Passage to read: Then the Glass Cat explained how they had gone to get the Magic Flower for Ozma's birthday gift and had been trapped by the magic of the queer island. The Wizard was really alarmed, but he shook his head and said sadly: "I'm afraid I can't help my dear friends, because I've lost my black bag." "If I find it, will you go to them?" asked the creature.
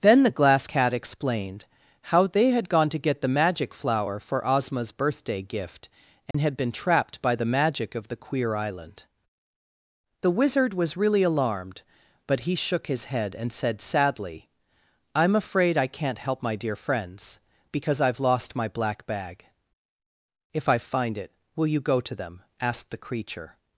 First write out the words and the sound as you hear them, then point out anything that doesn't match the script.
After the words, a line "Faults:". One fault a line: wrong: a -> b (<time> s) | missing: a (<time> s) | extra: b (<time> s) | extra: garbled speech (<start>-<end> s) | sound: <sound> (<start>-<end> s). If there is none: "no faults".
Then the Glass Cat explained how they had gone to get the Magic Flower for Ozma's birthday gift and had been trapped by the magic of the queer island. The Wizard was really alarmed, but he shook his head and said sadly: "I'm afraid I can't help my dear friends, because I've lost my black bag." "If I find it, will you go to them?" asked the creature.
Faults:
sound: dropout (6.3-6.3 s)